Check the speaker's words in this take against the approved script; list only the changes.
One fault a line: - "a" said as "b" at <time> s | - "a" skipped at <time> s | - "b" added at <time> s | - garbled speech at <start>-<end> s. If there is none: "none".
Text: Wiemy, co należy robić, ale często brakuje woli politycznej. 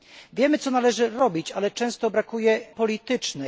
- "woli" skipped at 2.6 s